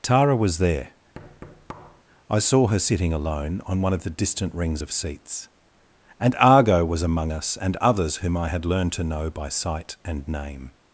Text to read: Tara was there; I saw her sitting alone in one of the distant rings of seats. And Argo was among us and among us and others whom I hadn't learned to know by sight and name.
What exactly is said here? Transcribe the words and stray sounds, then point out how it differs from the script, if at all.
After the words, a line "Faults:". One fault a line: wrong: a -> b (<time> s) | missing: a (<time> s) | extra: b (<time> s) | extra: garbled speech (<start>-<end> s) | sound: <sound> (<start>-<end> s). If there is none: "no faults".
Tara was there; I saw her sitting alone on one of the distant rings of seats. And Argo was among us and others whom I had learned to know by sight and name.
Faults:
sound: thud (1.1-2.0 s)
wrong: in -> on (3.7 s)
missing: among us and (7.8 s)
wrong: hadn't -> had (8.5 s)